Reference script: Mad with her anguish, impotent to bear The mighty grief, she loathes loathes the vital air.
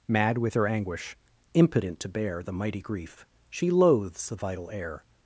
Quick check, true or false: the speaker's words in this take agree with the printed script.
false